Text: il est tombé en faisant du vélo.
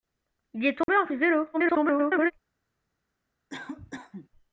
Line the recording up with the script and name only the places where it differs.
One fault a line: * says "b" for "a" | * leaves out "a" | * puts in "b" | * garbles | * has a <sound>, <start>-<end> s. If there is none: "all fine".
* has a dropout, 0.8-0.9 s
* leaves out "faisant"
* garbles
* has a cough, 3.5-4.3 s